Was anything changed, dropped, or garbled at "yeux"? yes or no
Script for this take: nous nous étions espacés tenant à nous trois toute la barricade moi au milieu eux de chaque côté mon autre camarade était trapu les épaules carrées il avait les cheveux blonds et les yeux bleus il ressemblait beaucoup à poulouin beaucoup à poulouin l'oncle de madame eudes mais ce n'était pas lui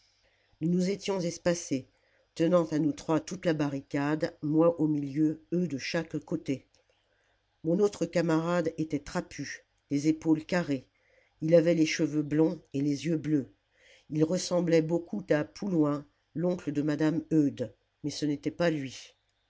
no